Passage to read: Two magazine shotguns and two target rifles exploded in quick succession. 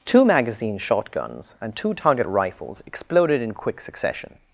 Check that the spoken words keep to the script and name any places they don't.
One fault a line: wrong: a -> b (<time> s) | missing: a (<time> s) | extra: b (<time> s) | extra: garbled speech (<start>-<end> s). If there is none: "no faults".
no faults